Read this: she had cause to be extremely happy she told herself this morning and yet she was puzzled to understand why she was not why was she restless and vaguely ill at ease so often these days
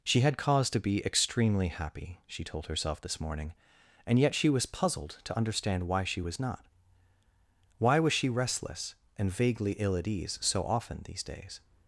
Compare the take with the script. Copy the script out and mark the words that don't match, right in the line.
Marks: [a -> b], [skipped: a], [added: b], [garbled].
she had cause to be extremely happy she told herself this morning and yet she was puzzled to understand why she was not why was she restless and vaguely ill at ease so often these days